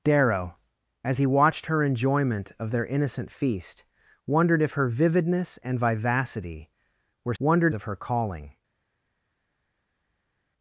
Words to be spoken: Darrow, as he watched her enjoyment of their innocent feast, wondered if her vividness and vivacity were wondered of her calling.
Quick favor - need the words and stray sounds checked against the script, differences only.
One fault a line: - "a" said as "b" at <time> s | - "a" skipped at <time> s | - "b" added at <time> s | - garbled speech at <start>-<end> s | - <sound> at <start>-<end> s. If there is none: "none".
none